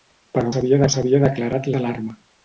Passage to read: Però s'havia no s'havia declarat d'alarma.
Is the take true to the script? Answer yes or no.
yes